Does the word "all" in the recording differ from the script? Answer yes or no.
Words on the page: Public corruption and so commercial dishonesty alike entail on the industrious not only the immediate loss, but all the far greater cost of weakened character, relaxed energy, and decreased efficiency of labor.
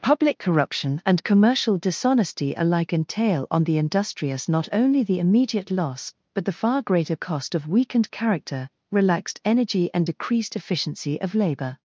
yes